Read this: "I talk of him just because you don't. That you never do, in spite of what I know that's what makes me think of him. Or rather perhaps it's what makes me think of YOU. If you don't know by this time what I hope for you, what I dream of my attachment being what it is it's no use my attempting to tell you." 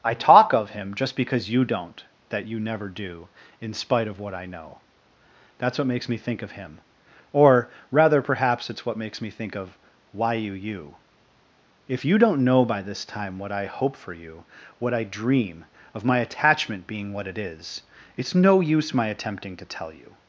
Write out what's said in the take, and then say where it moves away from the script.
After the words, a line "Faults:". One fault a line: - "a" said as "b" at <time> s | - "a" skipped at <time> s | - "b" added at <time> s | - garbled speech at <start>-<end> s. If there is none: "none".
"I talk of him just because you don't. That you never do, in spite of what I know that's what makes me think of him. Or rather perhaps it's what makes me think of why you YOU. If you don't know by this time what I hope for you, what I dream of my attachment being what it is it's no use my attempting to tell you."
Faults:
- "why you" added at 10.1 s